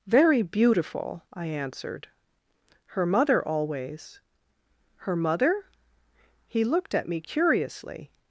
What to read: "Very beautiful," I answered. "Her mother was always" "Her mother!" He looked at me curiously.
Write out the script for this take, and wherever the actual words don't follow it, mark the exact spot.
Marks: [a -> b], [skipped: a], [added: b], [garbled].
"Very beautiful," I answered. "Her mother [skipped: was] always" "Her mother!" He looked at me curiously.